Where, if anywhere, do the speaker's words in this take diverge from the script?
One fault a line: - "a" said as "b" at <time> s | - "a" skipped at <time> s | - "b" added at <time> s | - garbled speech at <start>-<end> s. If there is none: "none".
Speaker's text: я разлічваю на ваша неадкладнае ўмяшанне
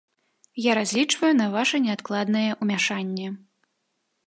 none